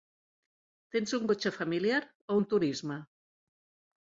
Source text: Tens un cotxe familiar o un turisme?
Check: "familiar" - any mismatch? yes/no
no